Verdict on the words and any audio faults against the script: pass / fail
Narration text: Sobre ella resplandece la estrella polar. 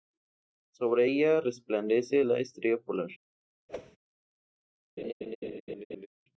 fail